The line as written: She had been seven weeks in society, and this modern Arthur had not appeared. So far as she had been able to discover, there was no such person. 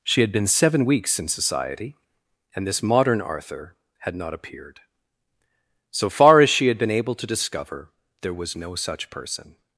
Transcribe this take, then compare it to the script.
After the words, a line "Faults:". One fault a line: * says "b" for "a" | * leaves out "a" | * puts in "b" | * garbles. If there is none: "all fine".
She had been seven weeks in society, and this modern Arthur had not appeared. So far as she had been able to discover, there was no such person.
Faults:
all fine